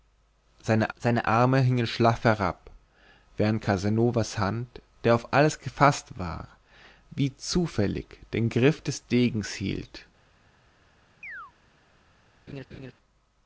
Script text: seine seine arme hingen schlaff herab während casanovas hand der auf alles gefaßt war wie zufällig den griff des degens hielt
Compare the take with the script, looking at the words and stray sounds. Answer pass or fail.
fail